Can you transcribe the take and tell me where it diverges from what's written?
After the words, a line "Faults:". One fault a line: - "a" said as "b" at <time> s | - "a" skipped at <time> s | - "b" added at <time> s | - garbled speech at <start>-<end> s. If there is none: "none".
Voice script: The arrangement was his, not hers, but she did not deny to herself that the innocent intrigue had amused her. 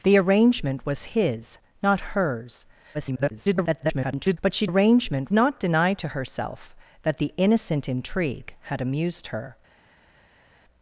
The arrangement was his, not hers, [garbled] but she arrangement not deny to herself that the innocent intrigue had amused her.
Faults:
- garbled speech at 2.9-4.4 s
- "did" said as "arrangement" at 4.6 s